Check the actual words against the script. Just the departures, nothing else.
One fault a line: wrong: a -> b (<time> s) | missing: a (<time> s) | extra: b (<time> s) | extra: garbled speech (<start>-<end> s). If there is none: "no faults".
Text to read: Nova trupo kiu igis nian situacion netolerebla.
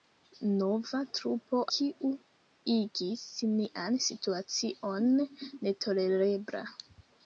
no faults